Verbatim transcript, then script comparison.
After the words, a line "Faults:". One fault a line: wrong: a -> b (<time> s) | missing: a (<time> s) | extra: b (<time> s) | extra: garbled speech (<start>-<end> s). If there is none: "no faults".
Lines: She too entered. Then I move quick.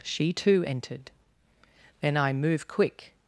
She too entered. Then I move quick.
Faults:
no faults